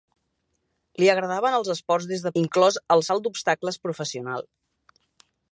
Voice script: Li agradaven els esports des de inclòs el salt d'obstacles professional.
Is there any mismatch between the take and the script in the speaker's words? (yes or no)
no